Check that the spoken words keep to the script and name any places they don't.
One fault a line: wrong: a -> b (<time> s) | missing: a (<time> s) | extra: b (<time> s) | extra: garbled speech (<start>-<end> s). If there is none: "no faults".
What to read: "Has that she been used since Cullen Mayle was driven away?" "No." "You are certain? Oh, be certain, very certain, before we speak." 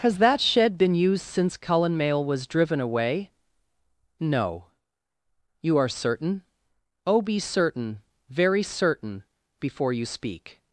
wrong: she -> shed (0.4 s)
wrong: we -> you (9.9 s)